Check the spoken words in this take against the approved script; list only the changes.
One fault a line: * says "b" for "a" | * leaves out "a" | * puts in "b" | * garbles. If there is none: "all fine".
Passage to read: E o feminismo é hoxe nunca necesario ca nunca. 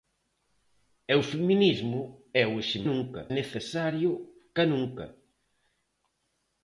all fine